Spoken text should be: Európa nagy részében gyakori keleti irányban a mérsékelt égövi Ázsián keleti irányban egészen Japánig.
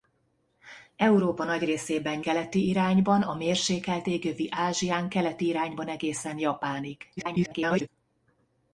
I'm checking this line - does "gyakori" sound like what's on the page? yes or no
no